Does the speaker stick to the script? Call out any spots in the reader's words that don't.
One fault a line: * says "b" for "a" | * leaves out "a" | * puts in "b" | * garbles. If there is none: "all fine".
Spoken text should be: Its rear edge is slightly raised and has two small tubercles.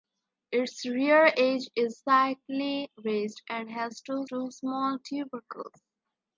* puts in "two"